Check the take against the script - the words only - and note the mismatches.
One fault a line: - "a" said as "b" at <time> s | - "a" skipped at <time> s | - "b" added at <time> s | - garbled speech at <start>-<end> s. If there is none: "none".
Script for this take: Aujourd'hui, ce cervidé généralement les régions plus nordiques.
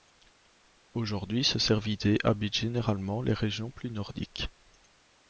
- "habite" added at 2.2 s